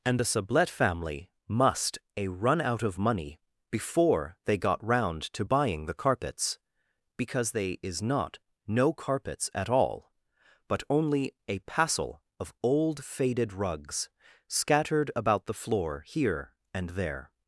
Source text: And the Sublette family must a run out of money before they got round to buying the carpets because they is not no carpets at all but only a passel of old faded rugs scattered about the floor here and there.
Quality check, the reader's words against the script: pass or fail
pass